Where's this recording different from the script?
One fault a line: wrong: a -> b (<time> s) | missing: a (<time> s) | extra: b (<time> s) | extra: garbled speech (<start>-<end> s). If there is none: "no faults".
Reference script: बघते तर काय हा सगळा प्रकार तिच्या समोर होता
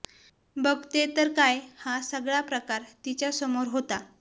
no faults